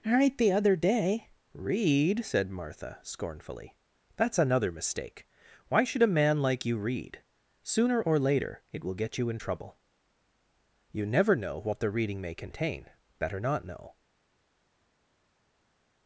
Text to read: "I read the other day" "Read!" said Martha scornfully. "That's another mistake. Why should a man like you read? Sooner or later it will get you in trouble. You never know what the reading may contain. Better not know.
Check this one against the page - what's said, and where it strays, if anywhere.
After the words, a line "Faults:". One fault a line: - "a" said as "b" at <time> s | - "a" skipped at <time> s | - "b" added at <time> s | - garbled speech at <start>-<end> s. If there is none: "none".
"right the other day" "Read!" said Martha scornfully. "That's another mistake. Why should a man like you read? Sooner or later it will get you in trouble. You never know what the reading may contain. Better not know.
Faults:
- "I read" said as "right" at 0.1 s